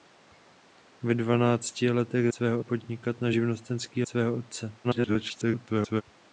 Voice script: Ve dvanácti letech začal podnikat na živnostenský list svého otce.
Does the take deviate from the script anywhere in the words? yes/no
yes